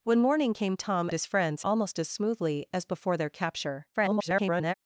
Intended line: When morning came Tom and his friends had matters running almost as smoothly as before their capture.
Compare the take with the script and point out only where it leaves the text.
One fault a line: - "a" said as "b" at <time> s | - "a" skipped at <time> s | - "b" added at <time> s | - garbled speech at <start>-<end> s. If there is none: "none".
- "and" skipped at 1.1 s
- "had matters running" skipped at 1.6 s
- garbled speech at 3.9-4.7 s